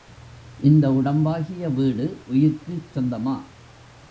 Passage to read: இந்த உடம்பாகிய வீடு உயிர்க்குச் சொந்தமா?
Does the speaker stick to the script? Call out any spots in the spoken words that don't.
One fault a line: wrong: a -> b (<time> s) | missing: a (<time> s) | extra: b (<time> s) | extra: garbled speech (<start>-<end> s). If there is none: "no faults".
no faults